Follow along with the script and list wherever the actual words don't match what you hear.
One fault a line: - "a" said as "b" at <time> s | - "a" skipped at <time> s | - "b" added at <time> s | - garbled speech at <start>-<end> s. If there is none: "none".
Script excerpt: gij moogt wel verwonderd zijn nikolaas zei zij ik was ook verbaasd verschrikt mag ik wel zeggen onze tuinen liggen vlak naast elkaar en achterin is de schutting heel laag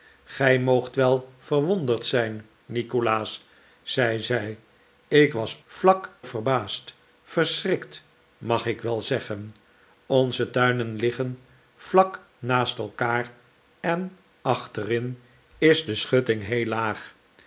- "ook" said as "vlak" at 5.7 s